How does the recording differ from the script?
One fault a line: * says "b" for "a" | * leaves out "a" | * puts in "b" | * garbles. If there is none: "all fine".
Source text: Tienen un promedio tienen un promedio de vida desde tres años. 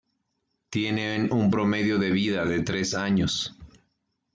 * leaves out "tienen un promedio"
* says "de" for "desde"